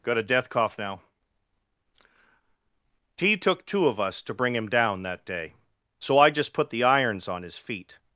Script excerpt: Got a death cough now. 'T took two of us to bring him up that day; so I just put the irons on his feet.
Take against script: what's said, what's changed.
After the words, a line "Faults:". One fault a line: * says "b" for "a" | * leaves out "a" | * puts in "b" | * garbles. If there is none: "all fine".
Got a death cough now. 'T took two of us to bring him down that day; so I just put the irons on his feet.
Faults:
* says "down" for "up"